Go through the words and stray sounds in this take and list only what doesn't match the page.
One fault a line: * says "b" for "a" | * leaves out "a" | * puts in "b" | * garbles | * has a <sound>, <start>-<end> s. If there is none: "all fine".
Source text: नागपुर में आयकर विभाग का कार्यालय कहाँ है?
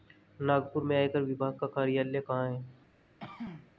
* has a throat clearing, 3.2-3.7 s